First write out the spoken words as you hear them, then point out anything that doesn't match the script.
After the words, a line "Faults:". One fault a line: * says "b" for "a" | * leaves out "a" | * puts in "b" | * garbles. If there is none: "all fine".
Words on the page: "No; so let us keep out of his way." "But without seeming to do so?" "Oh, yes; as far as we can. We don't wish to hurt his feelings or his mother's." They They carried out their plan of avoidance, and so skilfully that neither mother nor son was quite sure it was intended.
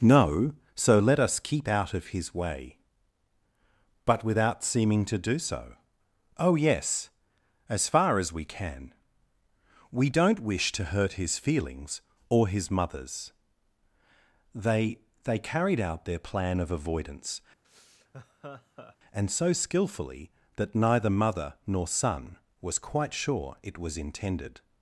"No; so let us keep out of his way." "But without seeming to do so?" "Oh, yes; as far as we can. We don't wish to hurt his feelings or his mother's." They They carried out their plan of avoidance, and so skilfully that neither mother nor son was quite sure it was intended.
Faults:
all fine